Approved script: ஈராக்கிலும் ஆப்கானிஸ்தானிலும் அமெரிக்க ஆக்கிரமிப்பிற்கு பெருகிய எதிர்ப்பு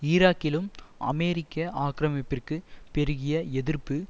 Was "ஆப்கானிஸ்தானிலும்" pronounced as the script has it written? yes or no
no